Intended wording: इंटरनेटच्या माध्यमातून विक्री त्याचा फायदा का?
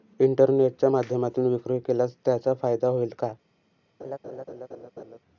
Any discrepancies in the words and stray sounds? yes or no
yes